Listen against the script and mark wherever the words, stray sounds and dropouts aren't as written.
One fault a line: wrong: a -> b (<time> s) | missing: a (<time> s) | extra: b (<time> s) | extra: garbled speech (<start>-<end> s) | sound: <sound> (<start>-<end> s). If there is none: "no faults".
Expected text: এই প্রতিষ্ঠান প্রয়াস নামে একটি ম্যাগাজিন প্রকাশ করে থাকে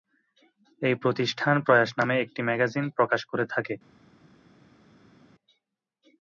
no faults